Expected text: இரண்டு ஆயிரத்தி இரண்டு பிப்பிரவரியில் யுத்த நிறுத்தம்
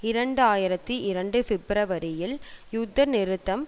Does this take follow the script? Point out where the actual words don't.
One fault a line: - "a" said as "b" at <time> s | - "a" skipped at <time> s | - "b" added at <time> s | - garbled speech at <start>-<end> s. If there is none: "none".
none